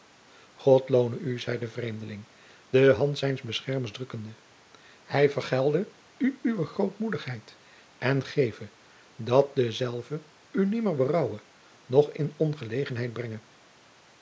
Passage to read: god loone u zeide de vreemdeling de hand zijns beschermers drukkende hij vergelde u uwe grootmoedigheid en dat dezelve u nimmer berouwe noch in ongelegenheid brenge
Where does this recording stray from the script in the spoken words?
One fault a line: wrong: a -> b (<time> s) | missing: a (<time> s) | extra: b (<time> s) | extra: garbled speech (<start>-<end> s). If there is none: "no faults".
extra: geve (8.2 s)